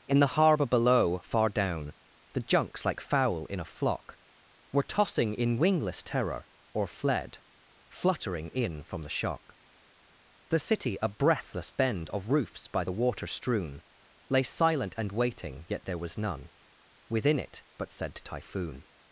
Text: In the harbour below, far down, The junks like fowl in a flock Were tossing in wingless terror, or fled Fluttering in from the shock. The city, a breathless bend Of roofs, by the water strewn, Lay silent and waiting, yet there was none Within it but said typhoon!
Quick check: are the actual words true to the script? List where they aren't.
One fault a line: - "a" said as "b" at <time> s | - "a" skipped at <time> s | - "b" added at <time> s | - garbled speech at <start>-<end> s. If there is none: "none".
none